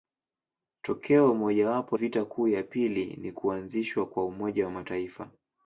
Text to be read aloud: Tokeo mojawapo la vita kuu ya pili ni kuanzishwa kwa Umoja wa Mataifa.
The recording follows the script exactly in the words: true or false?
false